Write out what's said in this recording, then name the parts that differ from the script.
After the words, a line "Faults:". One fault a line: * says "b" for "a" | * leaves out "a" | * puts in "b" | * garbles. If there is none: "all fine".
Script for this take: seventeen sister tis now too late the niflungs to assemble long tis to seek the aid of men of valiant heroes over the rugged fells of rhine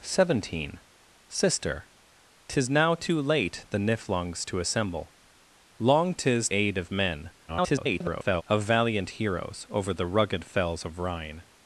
seventeen sister tis now too late the niflungs to assemble long tis aid of men [garbled] of valiant heroes over the rugged fells of rhine
Faults:
* leaves out "to seek the"
* garbles